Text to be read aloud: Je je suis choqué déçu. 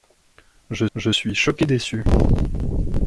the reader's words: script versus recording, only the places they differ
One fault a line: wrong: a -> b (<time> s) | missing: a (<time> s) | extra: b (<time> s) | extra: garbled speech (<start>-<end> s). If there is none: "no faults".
no faults